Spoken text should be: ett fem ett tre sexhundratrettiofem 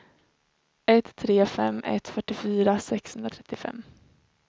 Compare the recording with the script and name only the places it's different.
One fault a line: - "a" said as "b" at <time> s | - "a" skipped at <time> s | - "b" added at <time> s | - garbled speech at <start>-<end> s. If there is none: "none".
- "tre" added at 1.1 s
- "tre" said as "fyrtiofyra" at 2.1 s